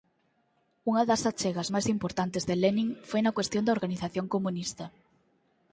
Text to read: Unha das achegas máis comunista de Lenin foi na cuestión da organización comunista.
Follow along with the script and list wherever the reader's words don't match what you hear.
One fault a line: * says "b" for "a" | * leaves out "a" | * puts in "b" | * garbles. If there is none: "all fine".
* says "importantes" for "comunista"